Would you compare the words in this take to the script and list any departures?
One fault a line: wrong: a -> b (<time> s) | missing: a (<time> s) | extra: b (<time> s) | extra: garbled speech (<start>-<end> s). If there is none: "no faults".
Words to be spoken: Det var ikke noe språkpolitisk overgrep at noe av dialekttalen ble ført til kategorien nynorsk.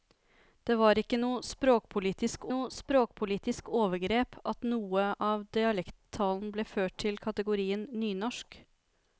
extra: noe språkpolitisk (2.5 s)